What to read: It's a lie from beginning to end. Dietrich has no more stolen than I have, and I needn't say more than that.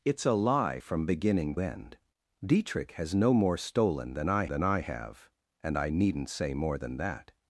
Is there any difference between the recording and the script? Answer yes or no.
yes